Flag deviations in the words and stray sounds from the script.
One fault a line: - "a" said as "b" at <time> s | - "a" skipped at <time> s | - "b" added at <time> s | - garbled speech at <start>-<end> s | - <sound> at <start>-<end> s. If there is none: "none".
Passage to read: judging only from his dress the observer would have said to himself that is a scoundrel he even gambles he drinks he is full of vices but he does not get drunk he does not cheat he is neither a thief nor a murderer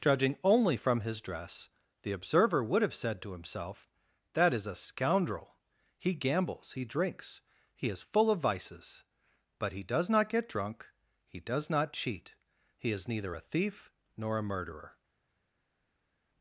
- "even" skipped at 6.2 s